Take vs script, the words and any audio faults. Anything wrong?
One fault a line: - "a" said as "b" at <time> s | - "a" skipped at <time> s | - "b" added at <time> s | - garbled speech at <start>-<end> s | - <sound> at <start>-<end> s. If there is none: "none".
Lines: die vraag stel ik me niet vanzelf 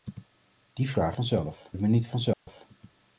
- "stel" said as "vanzelf" at 1.1 s
- dropout at 2.3-2.5 s